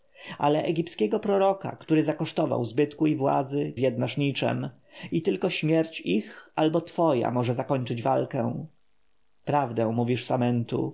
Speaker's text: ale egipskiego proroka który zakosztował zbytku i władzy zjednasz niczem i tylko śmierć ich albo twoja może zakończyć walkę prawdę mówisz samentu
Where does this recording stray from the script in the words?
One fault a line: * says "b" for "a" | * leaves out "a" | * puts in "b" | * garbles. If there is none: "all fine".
all fine